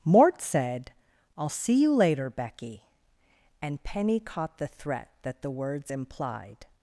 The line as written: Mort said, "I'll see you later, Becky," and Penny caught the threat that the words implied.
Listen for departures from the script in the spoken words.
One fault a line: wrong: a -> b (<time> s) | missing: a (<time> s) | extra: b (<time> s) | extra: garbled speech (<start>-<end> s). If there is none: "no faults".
no faults